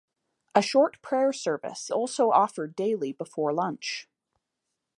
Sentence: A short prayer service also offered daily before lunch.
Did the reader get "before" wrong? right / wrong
right